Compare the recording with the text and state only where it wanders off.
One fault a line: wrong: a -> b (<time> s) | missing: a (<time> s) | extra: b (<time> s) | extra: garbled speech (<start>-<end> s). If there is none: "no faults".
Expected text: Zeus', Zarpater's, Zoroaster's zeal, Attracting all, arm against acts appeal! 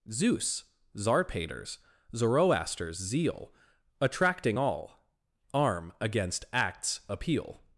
no faults